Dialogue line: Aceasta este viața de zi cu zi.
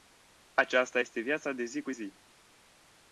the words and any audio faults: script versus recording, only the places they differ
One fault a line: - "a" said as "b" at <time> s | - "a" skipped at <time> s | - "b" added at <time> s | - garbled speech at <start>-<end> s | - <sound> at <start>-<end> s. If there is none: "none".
none